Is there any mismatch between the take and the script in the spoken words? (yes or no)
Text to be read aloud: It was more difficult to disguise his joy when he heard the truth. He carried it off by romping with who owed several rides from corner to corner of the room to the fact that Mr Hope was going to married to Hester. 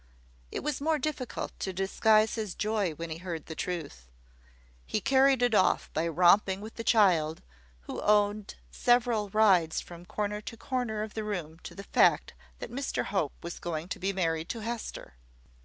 yes